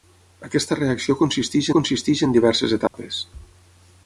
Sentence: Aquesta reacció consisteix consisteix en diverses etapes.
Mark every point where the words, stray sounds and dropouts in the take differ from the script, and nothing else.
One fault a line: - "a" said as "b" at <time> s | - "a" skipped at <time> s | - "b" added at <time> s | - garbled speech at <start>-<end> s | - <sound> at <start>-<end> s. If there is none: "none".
- dropout at 2.9-2.9 s